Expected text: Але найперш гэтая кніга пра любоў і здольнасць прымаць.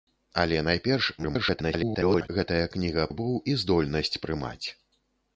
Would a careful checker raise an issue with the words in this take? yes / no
yes